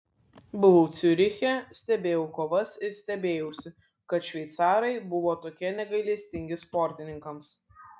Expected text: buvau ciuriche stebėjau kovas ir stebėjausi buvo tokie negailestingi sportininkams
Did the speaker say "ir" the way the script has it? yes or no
yes